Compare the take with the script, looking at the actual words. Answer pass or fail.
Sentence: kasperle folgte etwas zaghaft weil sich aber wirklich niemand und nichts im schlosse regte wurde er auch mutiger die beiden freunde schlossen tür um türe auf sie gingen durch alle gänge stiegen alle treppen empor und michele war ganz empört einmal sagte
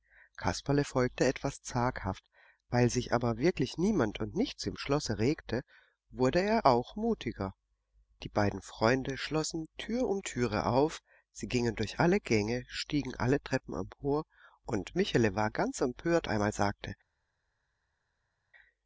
pass